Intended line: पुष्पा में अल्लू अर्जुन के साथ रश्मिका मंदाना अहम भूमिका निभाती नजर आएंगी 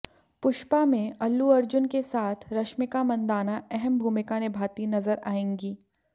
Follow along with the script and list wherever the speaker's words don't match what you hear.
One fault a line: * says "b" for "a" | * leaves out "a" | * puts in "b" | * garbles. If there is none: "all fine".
all fine